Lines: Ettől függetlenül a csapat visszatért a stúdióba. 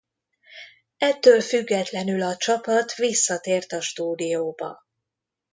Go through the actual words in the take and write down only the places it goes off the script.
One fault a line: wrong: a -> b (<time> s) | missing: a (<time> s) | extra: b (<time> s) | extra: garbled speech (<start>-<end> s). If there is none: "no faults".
no faults